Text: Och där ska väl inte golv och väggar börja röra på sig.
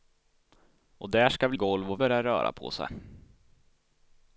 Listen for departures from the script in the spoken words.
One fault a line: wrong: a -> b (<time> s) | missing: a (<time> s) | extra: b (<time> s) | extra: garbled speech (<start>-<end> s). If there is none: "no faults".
missing: inte (1.6 s)
missing: väggar (2.0 s)